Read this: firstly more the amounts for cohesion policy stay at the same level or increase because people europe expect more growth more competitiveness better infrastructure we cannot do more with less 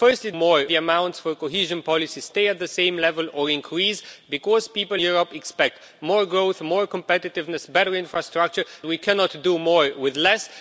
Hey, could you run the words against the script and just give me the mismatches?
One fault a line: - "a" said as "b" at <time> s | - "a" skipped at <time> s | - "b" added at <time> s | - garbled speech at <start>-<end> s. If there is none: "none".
none